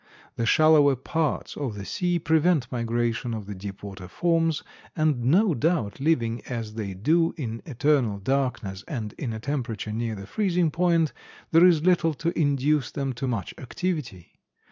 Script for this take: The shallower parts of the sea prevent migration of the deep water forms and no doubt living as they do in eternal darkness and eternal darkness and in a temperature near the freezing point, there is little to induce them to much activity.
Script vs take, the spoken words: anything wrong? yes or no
yes